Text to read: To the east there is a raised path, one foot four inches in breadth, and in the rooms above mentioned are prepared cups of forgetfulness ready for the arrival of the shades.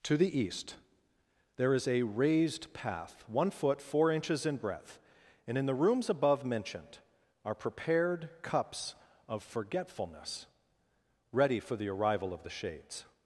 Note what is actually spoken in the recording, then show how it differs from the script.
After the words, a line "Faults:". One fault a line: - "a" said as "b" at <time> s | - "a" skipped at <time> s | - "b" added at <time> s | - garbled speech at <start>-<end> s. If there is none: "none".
To the east there is a raised path, one foot four inches in breadth, and in the rooms above mentioned are prepared cups of forgetfulness ready for the arrival of the shades.
Faults:
none